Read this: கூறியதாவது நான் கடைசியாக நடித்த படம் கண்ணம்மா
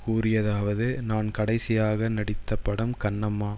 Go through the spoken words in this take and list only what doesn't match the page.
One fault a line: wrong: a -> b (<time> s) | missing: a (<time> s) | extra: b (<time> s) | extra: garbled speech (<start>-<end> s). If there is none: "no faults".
no faults